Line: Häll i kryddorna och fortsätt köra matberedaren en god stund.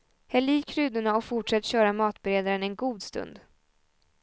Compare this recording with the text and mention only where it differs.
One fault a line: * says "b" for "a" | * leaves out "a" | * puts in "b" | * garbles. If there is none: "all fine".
all fine